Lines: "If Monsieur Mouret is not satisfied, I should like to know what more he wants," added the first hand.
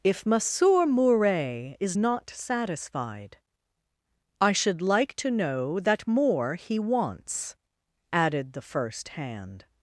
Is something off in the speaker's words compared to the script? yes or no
yes